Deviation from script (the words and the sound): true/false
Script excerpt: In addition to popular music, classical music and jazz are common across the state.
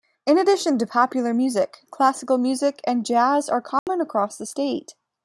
true